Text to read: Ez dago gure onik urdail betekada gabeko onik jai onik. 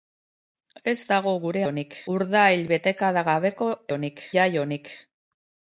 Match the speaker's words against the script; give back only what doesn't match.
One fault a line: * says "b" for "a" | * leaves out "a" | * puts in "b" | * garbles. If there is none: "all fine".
all fine